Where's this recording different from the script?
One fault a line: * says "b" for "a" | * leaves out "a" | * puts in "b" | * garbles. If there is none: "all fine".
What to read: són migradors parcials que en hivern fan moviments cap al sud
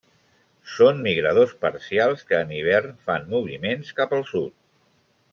all fine